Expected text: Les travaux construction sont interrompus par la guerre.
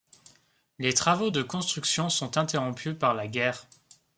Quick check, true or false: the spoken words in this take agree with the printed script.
false